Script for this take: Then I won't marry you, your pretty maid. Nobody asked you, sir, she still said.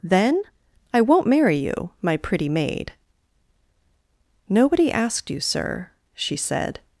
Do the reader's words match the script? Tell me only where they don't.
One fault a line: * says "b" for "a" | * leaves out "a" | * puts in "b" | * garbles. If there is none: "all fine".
* says "my" for "your"
* leaves out "still"